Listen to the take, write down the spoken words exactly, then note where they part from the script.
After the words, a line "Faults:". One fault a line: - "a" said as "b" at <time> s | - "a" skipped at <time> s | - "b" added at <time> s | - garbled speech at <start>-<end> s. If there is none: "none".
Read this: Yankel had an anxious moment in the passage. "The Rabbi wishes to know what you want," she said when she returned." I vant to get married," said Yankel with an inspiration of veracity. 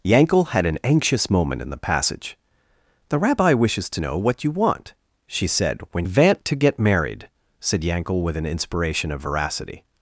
Yankel had an anxious moment in the passage. "The Rabbi wishes to know what you want," she said when vant to get married," said Yankel with an inspiration of veracity.
Faults:
- "she returned I" skipped at 6.0 s